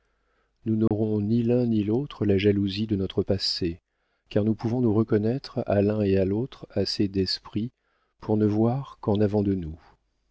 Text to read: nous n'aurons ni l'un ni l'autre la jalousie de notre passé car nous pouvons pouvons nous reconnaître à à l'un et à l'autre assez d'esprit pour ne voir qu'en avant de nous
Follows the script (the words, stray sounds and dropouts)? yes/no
no